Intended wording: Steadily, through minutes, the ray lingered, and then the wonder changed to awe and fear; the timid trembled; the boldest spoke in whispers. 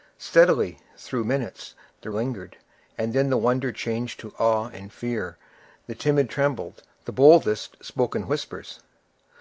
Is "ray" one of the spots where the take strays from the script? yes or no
yes